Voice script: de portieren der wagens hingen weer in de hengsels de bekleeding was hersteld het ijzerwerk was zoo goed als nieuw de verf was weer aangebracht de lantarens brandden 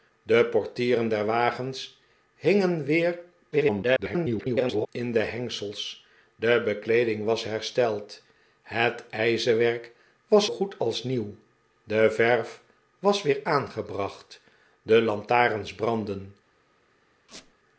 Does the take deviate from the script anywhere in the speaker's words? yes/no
yes